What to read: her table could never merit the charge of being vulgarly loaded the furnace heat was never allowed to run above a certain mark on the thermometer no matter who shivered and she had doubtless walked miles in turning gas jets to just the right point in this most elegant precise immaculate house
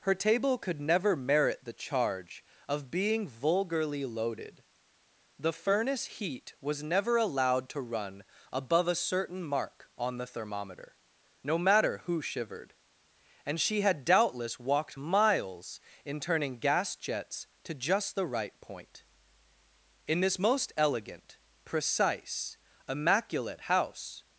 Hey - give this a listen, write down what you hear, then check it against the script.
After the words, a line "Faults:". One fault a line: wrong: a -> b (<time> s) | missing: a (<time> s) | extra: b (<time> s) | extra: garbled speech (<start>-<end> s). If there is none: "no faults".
her table could never merit the charge of being vulgarly loaded the furnace heat was never allowed to run above a certain mark on the thermometer no matter who shivered and she had doubtless walked miles in turning gas jets to just the right point in this most elegant precise immaculate house
Faults:
no faults